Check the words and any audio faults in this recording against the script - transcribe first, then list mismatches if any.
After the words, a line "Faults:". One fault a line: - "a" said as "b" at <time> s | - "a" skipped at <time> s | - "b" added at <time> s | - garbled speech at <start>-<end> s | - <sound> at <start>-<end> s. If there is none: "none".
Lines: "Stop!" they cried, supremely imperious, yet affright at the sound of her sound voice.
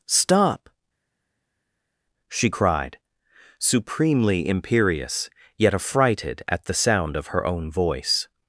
"Stop!" she cried, supremely imperious, yet affrighted at the sound of her own voice.
Faults:
- "they" said as "she" at 2.3 s
- "affright" said as "affrighted" at 5.7 s
- "sound" said as "own" at 7.5 s